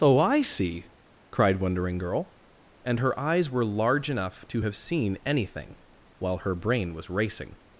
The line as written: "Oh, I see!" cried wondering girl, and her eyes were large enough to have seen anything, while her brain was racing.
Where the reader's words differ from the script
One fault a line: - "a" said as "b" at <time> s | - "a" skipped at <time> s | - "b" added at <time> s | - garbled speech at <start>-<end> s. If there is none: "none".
none